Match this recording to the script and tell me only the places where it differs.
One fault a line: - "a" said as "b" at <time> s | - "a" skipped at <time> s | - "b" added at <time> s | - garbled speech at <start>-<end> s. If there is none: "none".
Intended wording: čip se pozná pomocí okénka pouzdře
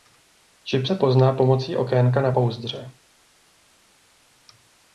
- "na" added at 2.2 s